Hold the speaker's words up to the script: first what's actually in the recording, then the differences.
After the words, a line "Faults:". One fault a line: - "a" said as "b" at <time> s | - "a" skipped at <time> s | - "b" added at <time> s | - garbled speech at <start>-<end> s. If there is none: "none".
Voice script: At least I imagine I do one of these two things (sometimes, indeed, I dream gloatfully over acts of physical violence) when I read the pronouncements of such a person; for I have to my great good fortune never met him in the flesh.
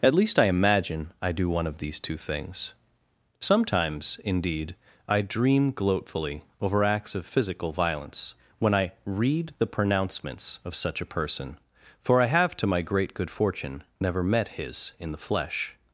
At least I imagine I do one of these two things (sometimes, indeed, I dream gloatfully over acts of physical violence) when I read the pronouncements of such a person; for I have to my great good fortune never met his in the flesh.
Faults:
- "him" said as "his" at 14.6 s